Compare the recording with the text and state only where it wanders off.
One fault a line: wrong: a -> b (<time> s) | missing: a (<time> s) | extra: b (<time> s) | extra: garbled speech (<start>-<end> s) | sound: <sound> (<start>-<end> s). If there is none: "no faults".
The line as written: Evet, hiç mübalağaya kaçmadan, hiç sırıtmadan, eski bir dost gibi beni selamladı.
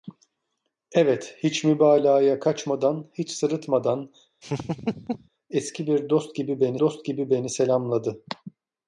sound: laugh (4.4-5.3 s)
extra: dost gibi beni (6.8 s)